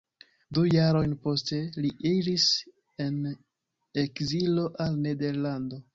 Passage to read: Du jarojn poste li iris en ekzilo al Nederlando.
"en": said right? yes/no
yes